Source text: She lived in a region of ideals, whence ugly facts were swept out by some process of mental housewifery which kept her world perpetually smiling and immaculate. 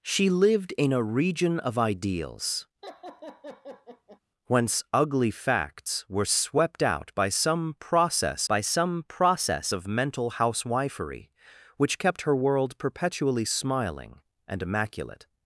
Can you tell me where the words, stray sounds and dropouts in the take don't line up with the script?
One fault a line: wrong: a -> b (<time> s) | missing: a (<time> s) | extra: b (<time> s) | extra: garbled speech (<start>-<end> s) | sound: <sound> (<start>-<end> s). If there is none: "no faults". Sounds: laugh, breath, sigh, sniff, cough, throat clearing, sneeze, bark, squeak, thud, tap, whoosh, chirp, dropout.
sound: laugh (2.8-4.2 s)
extra: by some process (8.5 s)